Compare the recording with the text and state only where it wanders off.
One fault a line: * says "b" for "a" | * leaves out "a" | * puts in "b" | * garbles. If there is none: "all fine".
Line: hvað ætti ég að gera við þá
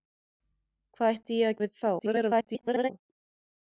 * leaves out "gera"
* garbles